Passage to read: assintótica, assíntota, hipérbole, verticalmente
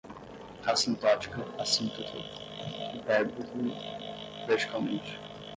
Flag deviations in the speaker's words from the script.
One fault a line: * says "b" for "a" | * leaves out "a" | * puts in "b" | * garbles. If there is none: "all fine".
all fine